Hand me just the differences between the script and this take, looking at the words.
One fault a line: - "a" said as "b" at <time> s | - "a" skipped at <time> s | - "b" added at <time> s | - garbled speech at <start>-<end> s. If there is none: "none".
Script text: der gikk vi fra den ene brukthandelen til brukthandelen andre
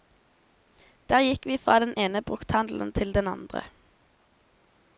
- "brukthandelen" said as "den" at 3.1 s